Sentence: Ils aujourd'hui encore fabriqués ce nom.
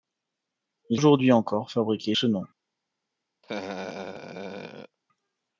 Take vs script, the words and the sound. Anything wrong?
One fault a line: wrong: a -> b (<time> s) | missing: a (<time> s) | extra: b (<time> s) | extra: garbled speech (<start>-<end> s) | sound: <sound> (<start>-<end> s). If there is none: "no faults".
sound: laugh (3.4-5.0 s)